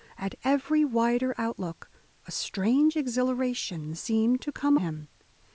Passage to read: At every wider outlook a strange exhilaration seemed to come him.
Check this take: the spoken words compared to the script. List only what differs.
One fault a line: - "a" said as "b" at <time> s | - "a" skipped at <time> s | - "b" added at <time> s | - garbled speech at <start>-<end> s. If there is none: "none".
none